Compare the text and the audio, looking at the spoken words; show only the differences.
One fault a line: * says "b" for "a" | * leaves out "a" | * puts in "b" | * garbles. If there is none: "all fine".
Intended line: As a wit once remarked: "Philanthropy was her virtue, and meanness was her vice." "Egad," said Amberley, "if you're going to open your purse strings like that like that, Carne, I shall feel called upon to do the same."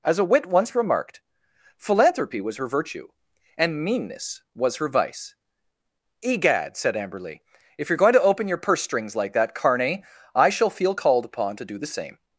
* leaves out "like that"